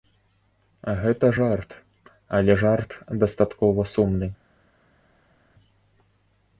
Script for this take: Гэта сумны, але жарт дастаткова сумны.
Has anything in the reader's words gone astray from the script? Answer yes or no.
yes